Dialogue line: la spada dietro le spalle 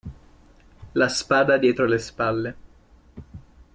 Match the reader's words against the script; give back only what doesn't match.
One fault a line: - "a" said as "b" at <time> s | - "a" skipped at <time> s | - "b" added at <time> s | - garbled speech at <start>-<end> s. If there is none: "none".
none